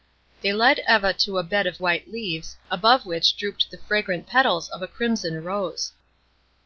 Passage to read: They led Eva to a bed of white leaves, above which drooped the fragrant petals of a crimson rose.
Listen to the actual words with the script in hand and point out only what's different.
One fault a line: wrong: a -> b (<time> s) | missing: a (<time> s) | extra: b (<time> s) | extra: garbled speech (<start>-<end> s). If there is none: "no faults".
no faults